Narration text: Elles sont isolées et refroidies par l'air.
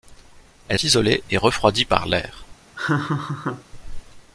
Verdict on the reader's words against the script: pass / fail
fail